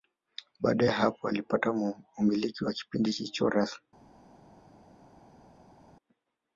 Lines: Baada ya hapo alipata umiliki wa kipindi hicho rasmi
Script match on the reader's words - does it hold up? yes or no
yes